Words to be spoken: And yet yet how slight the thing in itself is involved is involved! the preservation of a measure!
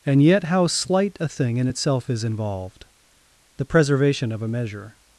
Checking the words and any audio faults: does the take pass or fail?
fail